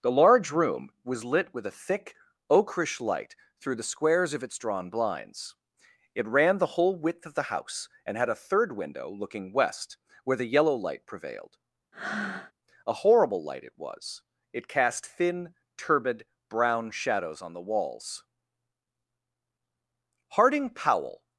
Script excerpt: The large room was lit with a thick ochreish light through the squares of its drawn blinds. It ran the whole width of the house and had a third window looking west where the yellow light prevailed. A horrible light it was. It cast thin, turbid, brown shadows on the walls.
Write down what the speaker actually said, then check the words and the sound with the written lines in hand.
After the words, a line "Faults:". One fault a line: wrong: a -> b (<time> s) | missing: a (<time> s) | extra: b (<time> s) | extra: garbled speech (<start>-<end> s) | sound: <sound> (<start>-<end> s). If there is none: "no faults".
The large room was lit with a thick ochreish light through the squares of its drawn blinds. It ran the whole width of the house and had a third window looking west where the yellow light prevailed. A horrible light it was. It cast thin, turbid, brown shadows on the walls. Harding Powell
Faults:
sound: breath (11.9-12.5 s)
extra: Harding Powell (20.3 s)